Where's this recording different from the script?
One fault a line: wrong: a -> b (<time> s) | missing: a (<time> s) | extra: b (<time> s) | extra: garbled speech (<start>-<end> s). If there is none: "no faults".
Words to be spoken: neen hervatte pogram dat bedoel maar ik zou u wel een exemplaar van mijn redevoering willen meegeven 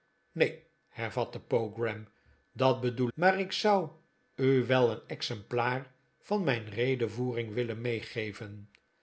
no faults